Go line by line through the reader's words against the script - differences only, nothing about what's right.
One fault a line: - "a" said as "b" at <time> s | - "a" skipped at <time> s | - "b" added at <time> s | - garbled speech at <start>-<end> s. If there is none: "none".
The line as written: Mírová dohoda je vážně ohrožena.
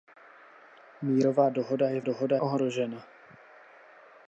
- "vážně" said as "dohoda" at 2.0 s